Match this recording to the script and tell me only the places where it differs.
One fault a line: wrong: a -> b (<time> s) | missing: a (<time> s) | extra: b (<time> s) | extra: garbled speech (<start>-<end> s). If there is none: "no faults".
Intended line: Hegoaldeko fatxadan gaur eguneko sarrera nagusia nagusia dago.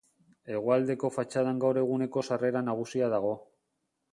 missing: nagusia (3.1 s)